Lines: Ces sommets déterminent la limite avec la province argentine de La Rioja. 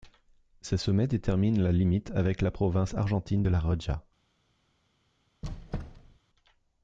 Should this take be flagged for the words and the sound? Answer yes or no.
yes